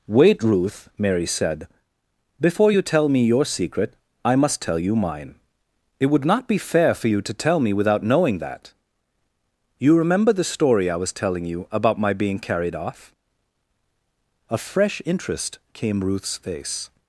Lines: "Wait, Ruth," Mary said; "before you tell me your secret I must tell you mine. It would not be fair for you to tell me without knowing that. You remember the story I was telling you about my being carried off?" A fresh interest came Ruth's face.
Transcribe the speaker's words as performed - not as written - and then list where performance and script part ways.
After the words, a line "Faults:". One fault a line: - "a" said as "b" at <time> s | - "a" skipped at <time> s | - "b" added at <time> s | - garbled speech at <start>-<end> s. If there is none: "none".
"Wait, Ruth," Mary said; "before you tell me your secret I must tell you mine. It would not be fair for you to tell me without knowing that. You remember the story I was telling you about my being carried off?" A fresh interest came Ruth's face.
Faults:
none